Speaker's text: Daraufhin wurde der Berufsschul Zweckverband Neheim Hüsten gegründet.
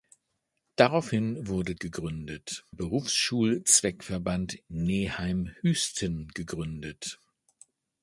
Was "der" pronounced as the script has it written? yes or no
no